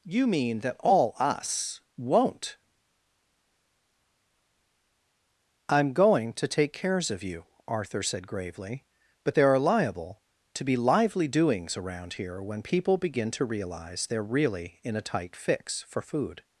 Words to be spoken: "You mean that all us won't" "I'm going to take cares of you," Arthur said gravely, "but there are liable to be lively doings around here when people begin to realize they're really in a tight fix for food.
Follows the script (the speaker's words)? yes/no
yes